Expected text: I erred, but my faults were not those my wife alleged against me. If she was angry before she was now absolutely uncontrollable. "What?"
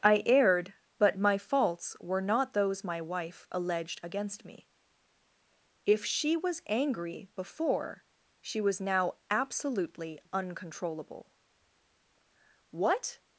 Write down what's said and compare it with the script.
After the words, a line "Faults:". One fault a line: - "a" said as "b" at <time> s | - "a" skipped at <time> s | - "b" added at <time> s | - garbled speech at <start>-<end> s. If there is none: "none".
I erred, but my faults were not those my wife alleged against me. If she was angry before she was now absolutely uncontrollable. "What?"
Faults:
none